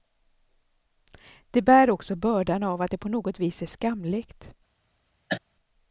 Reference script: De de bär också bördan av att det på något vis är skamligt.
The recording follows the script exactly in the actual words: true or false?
false